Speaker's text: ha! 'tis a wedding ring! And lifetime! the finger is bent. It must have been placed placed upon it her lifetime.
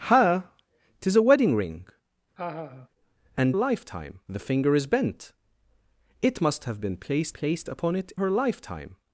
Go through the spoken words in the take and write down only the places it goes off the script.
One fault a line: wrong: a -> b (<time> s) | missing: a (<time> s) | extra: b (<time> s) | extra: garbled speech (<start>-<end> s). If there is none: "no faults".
no faults